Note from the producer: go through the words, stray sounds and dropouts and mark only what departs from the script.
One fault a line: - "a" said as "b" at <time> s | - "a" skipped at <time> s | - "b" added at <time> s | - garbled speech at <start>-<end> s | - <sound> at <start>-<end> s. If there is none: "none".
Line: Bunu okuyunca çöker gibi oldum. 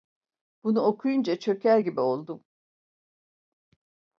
none